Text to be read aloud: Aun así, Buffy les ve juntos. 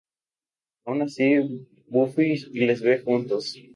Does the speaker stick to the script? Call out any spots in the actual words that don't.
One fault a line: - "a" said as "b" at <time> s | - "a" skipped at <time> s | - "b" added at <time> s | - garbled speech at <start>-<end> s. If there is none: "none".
none